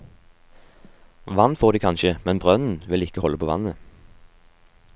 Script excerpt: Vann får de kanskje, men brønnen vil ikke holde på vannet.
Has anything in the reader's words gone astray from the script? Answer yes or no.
no